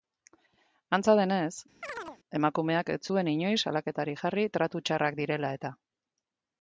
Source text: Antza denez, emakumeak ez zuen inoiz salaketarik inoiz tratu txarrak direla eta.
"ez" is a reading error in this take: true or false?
false